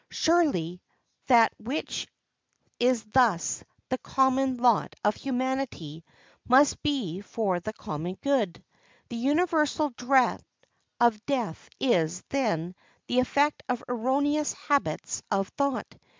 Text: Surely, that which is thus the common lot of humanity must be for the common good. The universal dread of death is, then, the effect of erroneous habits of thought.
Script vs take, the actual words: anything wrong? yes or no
no